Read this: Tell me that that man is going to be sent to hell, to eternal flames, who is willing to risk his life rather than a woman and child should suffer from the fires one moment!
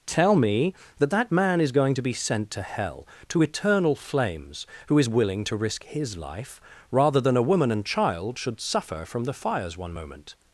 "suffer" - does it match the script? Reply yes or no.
yes